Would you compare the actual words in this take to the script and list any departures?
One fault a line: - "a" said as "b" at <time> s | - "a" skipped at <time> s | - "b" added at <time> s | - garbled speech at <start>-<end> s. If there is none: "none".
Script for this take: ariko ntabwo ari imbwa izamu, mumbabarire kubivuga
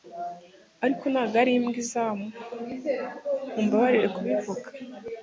none